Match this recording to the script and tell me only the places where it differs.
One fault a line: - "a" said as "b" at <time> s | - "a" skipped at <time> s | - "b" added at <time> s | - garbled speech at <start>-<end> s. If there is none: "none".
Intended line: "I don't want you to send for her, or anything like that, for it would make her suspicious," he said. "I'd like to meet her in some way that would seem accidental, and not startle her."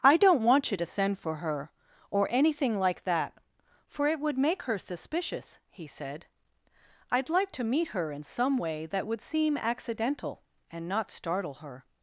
none